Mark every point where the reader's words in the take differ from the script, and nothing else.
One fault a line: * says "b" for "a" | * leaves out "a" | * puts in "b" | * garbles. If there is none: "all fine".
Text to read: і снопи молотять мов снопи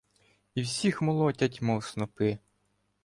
* says "всіх" for "снопи"